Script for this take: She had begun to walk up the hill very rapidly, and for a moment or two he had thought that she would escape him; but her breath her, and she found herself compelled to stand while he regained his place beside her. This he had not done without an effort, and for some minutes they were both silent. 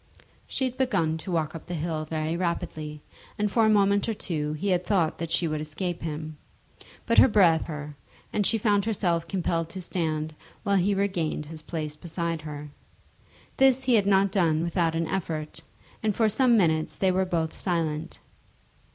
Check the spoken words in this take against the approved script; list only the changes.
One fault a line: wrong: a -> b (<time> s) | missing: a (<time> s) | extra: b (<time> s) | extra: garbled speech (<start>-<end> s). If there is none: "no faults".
no faults